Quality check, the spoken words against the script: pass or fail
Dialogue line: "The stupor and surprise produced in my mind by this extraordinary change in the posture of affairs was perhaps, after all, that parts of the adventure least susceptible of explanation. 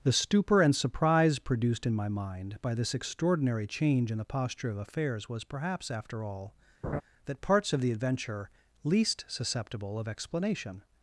pass